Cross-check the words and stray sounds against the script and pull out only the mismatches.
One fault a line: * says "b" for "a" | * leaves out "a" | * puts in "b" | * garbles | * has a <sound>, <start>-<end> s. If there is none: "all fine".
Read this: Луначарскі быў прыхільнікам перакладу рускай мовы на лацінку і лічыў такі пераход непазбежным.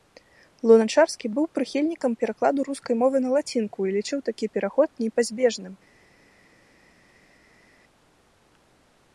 all fine